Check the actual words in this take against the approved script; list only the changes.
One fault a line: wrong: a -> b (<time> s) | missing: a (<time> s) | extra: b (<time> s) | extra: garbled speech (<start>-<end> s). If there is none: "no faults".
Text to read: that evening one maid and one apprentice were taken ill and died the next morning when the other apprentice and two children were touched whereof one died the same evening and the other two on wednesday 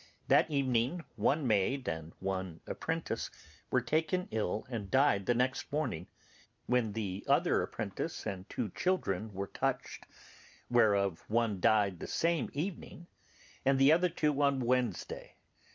no faults